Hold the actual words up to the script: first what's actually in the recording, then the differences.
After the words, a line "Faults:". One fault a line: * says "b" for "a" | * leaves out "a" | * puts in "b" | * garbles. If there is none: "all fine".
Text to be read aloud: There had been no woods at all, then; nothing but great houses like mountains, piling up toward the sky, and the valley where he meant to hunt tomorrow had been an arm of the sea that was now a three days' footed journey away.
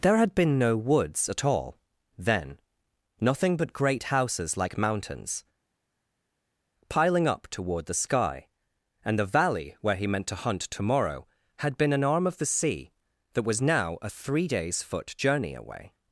There had been no woods at all, then; nothing but great houses like mountains, piling up toward the sky, and the valley where he meant to hunt tomorrow had been an arm of the sea that was now a three days' foot journey away.
Faults:
* says "foot" for "footed"